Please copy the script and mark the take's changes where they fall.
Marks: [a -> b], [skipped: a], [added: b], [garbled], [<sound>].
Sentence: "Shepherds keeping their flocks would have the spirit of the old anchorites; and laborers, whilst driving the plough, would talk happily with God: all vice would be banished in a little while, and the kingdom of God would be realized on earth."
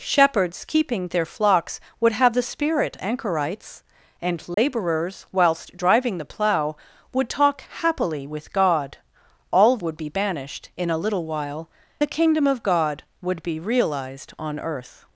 "Shepherds keeping their flocks would have the spirit [skipped: of the old] anchorites; and laborers, [dropout] whilst driving the plough, would talk happily with God: all [skipped: vice] would be banished in a little while, [skipped: and] the kingdom of God would be realized on earth."